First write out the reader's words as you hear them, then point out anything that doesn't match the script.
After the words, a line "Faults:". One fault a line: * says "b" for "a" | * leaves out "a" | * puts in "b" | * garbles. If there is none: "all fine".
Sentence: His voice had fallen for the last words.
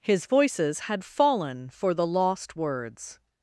His voices had fallen for the lost words.
Faults:
* says "voices" for "voice"
* says "lost" for "last"